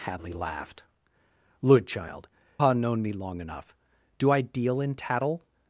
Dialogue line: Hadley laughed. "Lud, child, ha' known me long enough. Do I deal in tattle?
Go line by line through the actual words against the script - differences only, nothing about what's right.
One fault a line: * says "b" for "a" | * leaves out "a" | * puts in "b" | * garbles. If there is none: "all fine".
all fine